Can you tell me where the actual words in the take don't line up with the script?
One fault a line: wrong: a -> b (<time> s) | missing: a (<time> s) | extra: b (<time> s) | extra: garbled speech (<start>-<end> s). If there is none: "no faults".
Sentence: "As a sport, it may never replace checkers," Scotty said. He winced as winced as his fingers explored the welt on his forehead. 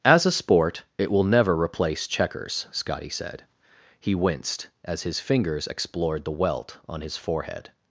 wrong: may -> will (1.1 s)
missing: winced as (5.0 s)